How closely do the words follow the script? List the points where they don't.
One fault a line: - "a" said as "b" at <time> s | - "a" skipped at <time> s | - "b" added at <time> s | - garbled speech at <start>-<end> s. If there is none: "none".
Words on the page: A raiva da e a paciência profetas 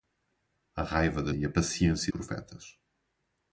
none